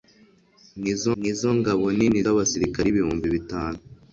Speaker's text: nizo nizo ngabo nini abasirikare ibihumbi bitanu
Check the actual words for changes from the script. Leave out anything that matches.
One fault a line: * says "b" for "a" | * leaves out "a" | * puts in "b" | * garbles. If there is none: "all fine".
all fine